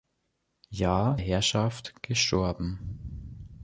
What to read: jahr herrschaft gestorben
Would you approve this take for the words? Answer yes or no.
yes